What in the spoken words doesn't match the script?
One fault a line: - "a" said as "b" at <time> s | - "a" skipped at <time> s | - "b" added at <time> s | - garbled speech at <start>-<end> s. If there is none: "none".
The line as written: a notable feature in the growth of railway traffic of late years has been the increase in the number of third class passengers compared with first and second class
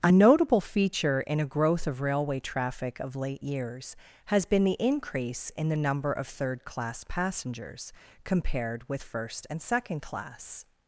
- "the" said as "a" at 1.4 s